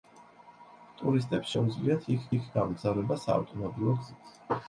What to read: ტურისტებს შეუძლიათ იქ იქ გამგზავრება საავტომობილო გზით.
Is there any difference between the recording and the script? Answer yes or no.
no